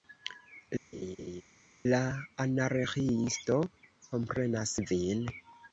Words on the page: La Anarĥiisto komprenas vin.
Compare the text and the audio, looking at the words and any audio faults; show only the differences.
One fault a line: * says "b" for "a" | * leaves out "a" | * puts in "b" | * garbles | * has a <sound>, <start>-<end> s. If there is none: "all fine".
* has a laugh, 0.9-1.4 s